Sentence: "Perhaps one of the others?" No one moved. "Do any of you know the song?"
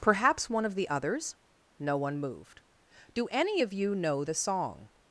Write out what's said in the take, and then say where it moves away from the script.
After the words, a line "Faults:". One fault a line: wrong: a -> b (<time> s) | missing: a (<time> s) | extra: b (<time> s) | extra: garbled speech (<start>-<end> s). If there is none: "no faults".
"Perhaps one of the others?" No one moved. "Do any of you know the song?"
Faults:
no faults